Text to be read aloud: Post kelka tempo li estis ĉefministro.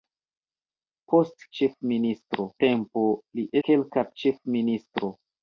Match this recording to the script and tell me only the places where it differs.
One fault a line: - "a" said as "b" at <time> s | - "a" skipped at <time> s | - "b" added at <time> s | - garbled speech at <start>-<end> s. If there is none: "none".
- "kelka" said as "ĉefministro" at 1.6 s
- "estis" said as "kelka" at 3.7 s